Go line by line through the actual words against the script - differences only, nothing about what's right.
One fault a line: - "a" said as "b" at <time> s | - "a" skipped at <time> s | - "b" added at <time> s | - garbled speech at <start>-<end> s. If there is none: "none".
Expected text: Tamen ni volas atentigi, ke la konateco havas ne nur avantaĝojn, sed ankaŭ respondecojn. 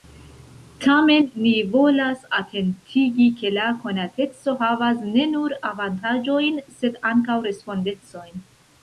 none